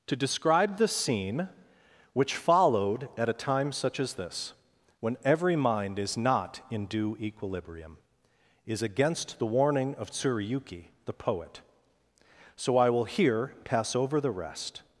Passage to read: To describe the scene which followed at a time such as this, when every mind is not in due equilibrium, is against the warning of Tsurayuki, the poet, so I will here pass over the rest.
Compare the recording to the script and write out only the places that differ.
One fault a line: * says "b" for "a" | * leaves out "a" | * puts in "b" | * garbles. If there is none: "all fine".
all fine